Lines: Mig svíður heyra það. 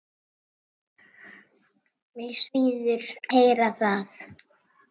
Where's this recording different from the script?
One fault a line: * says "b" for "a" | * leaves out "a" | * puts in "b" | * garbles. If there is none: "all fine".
all fine